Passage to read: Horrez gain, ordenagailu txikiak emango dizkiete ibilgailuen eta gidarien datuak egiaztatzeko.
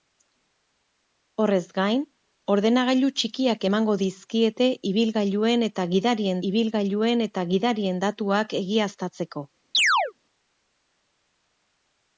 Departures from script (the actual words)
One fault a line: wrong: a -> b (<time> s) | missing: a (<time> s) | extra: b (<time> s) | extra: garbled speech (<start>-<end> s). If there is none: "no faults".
extra: ibilgailuen eta gidarien (6.5 s)